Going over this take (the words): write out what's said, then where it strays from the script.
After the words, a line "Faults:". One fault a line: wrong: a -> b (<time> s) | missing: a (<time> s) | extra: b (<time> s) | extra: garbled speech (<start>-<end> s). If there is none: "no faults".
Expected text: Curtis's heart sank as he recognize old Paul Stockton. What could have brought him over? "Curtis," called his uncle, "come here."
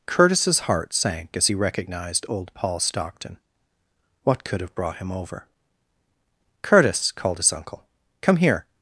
Curtis's heart sank as he recognized old Paul Stockton. What could have brought him over? "Curtis," called his uncle, "come here."
Faults:
wrong: recognize -> recognized (1.5 s)